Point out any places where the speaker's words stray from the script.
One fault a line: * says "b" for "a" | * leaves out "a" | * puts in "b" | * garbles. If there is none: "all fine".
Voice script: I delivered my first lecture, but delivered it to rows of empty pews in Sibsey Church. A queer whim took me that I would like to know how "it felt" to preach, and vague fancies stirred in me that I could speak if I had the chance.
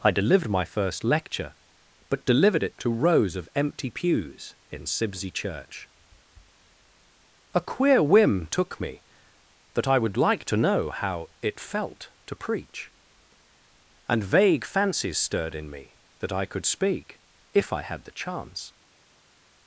all fine